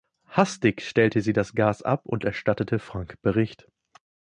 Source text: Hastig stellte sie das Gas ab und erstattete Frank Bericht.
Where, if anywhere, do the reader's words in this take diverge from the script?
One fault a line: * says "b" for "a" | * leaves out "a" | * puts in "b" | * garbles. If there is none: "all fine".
all fine